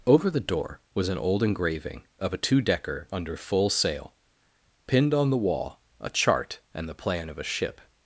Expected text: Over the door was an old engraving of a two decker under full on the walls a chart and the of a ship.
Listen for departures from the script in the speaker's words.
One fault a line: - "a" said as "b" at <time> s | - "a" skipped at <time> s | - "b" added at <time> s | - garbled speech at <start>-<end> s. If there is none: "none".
- "sail pinned" added at 3.7 s
- "walls" said as "wall" at 5.4 s
- "plan" added at 7.0 s